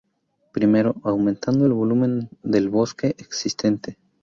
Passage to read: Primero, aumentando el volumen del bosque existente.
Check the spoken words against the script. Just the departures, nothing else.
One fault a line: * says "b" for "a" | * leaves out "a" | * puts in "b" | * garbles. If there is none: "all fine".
all fine